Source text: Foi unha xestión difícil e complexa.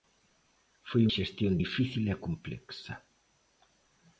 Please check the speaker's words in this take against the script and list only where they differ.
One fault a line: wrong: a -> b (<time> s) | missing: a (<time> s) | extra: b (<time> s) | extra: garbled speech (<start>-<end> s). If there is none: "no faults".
missing: unha (1.0 s)